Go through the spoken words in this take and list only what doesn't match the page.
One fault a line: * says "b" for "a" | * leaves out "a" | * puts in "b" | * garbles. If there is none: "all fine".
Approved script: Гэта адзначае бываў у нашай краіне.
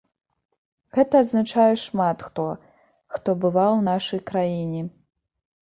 * puts in "шмат хто хто"